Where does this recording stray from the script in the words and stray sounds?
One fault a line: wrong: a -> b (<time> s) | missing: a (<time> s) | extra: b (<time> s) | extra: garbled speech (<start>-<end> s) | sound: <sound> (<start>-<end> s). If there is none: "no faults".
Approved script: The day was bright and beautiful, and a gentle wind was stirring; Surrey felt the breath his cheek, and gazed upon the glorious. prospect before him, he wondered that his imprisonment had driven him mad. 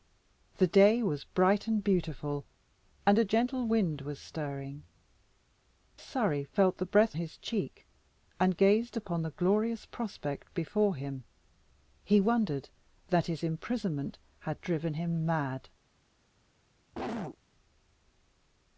sound: cough (16.9-17.4 s)